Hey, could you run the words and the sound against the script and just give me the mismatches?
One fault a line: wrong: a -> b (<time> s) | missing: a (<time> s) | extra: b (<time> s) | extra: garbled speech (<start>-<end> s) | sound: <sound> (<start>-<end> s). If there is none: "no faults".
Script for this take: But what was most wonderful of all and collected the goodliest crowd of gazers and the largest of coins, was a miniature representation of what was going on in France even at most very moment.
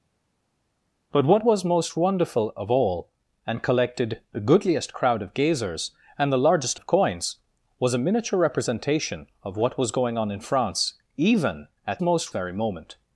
no faults